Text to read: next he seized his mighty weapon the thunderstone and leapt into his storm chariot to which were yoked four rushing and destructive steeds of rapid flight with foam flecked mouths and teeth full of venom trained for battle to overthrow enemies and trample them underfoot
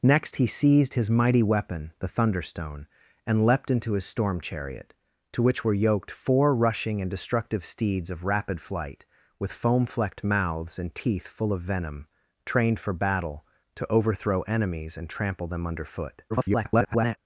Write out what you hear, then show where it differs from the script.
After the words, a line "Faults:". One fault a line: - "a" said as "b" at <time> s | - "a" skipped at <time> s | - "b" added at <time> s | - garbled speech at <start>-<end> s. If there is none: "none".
next he seized his mighty weapon the thunderstone and leapt into his storm chariot to which were yoked four rushing and destructive steeds of rapid flight with foam flecked mouths and teeth full of venom trained for battle to overthrow enemies and trample them underfoot [garbled]
Faults:
- garbled speech at 16.3-17.2 s